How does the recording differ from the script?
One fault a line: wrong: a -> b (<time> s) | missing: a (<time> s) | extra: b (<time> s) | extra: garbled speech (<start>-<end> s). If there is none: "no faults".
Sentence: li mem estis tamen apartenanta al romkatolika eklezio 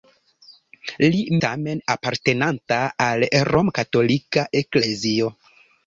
missing: mem estis (1.2 s)